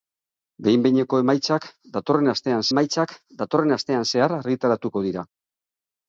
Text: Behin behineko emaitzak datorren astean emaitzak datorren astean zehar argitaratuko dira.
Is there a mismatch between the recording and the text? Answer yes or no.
no